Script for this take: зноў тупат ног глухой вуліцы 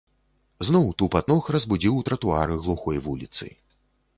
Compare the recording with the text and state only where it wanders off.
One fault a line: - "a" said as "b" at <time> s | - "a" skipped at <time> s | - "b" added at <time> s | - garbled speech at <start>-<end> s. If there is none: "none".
- "разбудзіў тратуары" added at 1.6 s